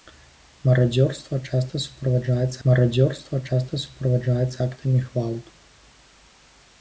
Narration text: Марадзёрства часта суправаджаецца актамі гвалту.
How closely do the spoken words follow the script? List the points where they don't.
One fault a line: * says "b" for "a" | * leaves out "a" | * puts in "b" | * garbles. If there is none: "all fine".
* puts in "марадзёрства часта суправаджаецца"